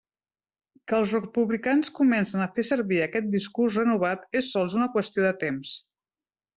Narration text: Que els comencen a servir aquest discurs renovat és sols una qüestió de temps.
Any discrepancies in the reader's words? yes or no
yes